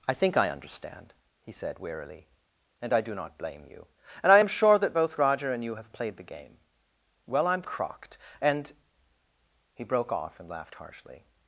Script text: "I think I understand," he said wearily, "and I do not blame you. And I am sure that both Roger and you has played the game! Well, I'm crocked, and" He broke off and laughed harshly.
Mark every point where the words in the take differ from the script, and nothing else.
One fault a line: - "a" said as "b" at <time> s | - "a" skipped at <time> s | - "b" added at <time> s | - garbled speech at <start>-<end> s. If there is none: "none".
- "has" said as "have" at 5.7 s